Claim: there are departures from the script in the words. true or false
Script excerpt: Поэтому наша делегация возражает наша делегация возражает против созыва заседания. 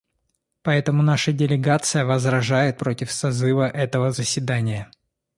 true